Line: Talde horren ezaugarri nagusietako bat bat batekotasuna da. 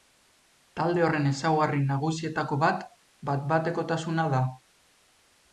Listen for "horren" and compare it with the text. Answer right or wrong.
right